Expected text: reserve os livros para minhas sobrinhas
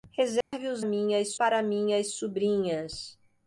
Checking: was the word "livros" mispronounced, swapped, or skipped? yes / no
yes